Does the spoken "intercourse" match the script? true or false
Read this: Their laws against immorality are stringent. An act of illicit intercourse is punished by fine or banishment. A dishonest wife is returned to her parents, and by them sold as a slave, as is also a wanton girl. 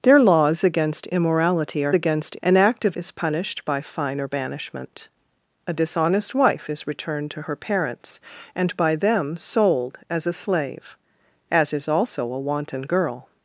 false